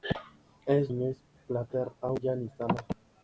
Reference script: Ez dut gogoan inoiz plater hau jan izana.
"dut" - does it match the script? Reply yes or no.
no